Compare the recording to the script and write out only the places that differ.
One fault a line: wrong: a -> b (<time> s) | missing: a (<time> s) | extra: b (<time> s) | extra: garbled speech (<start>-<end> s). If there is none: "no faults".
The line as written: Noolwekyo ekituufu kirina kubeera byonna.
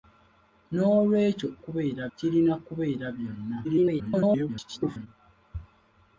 wrong: ekituufu -> kubeera (1.6 s)
extra: garbled speech (3.6-5.1 s)